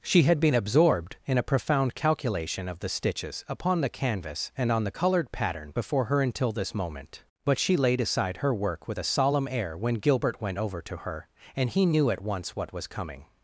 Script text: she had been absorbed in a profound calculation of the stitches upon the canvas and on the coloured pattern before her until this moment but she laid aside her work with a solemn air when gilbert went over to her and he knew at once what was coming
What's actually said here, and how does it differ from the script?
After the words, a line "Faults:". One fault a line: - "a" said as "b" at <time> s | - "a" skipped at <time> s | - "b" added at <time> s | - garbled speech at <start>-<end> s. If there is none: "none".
she had been absorbed in a profound calculation of the stitches upon the canvas and on the coloured pattern before her until this moment but she laid aside her work with a solemn air when gilbert went over to her and he knew at once what was coming
Faults:
none